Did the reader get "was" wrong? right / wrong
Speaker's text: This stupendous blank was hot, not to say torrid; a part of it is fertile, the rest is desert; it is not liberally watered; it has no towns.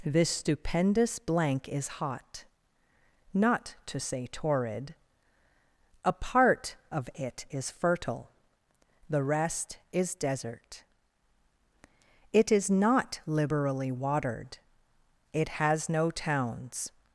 wrong